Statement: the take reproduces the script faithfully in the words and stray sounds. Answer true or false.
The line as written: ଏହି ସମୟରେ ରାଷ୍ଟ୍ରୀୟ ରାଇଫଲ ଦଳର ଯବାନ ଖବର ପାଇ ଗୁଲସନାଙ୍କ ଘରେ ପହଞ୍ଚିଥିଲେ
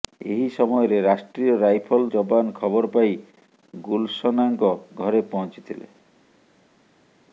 false